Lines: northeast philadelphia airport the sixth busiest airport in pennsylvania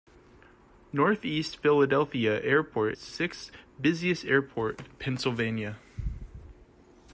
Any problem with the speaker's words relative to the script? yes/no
no